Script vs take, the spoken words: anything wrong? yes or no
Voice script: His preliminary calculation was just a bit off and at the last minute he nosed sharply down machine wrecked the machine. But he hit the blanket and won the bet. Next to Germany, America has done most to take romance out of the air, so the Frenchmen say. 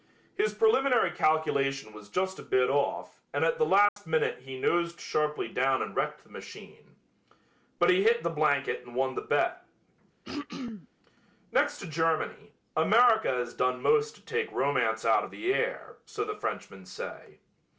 yes